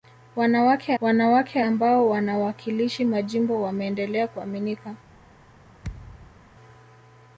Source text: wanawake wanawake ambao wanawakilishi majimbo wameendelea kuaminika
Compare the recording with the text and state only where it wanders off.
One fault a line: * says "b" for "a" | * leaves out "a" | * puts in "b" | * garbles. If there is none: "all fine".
all fine